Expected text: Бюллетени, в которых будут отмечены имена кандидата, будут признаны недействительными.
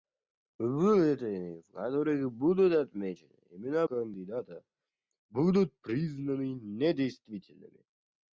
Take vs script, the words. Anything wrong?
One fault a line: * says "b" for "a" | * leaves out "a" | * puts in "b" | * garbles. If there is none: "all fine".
all fine